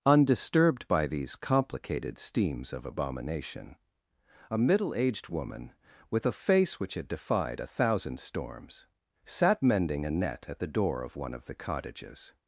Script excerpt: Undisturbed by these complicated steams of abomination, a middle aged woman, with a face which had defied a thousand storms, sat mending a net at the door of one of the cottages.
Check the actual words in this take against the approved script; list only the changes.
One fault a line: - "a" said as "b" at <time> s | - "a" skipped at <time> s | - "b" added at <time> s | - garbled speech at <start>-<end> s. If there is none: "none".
none